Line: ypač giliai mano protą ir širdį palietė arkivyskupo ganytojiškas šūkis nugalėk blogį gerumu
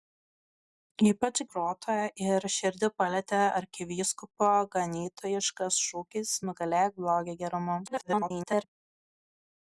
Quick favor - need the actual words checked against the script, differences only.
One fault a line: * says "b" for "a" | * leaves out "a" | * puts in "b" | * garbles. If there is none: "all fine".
* leaves out "giliai mano"
* garbles